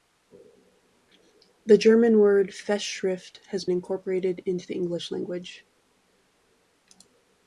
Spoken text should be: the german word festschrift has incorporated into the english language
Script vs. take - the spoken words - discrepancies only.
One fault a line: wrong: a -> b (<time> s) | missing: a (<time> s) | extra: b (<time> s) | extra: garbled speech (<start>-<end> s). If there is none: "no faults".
no faults